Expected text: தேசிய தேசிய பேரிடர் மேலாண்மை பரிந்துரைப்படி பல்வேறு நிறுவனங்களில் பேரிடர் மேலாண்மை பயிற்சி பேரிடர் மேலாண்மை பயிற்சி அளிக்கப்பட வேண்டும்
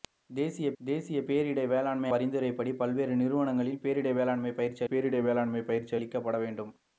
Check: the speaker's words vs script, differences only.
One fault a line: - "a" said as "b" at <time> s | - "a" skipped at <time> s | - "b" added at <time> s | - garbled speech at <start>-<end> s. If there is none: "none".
none